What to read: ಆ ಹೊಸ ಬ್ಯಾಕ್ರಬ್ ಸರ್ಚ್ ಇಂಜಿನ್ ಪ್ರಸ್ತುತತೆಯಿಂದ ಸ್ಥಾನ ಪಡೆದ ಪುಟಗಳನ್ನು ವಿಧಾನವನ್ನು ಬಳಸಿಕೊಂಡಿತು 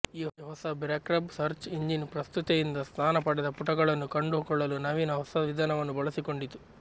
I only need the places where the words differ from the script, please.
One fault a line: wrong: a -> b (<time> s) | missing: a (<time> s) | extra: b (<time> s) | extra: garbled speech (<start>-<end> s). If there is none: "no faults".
wrong: ಆ -> ಈ (0.1 s)
extra: ಕಂಡುಕೊಳ್ಳಲು ನವೀನ ಹೊಸ (4.1 s)